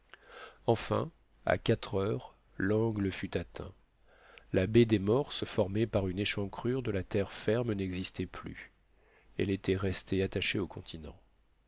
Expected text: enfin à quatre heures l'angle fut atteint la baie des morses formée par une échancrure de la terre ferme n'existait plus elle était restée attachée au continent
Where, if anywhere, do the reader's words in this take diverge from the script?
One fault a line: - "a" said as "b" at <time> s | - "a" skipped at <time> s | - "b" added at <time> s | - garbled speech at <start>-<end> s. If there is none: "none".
none